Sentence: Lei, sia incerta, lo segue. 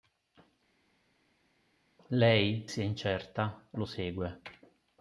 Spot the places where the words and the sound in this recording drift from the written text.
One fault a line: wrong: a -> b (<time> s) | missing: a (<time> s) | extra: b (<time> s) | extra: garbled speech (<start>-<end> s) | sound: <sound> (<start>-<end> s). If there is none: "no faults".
no faults